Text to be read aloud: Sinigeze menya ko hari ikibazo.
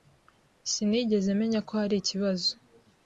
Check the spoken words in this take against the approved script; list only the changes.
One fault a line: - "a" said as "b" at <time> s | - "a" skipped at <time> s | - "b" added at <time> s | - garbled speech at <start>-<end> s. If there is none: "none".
none